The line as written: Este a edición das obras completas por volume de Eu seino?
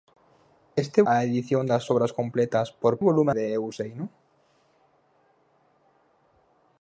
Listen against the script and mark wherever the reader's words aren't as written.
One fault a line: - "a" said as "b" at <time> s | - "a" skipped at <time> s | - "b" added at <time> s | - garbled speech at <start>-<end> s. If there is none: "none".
none